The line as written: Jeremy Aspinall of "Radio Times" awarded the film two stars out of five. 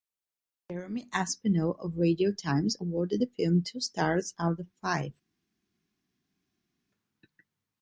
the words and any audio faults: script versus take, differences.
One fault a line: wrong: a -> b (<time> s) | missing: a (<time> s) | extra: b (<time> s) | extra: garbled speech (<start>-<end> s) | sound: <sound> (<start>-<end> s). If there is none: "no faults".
no faults